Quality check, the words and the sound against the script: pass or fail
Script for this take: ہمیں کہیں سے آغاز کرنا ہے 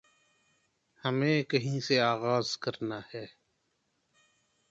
pass